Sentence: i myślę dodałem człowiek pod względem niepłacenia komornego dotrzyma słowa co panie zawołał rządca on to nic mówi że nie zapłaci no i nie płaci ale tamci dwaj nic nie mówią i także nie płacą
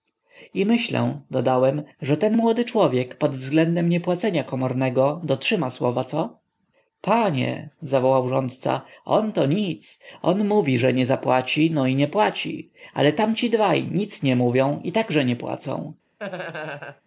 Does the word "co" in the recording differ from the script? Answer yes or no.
no